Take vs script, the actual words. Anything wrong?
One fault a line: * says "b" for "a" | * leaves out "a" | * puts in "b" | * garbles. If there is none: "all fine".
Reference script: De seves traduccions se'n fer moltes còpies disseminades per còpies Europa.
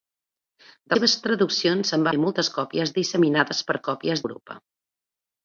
all fine